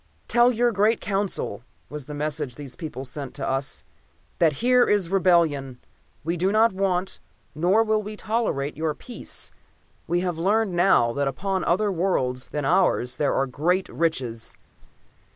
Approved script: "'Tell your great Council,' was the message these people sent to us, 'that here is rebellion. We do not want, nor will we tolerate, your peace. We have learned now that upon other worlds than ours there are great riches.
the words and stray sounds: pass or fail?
fail